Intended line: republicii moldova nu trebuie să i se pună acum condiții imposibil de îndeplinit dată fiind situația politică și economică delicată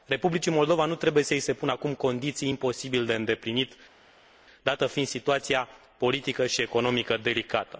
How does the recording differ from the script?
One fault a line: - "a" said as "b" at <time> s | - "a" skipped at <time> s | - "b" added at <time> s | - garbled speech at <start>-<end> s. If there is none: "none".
none